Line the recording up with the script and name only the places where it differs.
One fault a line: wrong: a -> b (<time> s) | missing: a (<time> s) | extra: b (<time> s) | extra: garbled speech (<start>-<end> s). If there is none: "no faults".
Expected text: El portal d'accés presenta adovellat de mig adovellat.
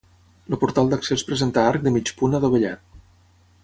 wrong: adovellat -> arc (1.7 s)
extra: punt (2.2 s)